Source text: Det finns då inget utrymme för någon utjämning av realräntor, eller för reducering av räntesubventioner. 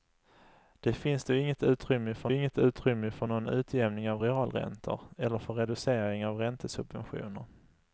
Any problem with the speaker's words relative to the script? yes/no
yes